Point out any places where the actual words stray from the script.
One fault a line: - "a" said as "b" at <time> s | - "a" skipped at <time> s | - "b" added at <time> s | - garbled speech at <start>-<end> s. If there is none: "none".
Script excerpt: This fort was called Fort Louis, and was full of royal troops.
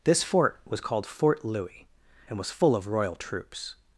none